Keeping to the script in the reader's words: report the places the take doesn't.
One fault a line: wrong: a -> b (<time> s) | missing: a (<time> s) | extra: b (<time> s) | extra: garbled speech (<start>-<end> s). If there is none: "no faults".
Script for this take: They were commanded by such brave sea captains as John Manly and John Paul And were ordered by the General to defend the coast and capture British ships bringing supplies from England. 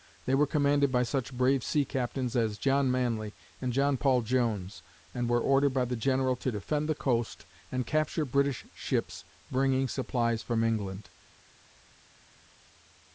extra: Jones (4.2 s)